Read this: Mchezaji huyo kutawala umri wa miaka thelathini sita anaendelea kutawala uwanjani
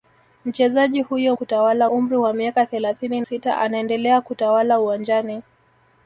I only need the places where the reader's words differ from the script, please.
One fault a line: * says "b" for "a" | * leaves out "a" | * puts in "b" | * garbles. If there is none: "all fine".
all fine